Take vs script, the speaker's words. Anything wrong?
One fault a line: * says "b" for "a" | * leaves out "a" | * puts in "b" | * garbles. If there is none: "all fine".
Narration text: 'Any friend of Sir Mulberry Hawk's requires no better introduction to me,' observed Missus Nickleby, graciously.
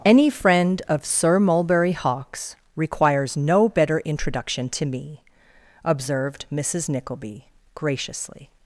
all fine